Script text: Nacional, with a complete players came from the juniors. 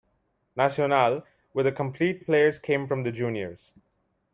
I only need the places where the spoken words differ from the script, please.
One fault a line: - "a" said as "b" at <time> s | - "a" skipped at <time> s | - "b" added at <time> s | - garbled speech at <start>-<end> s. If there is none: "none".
none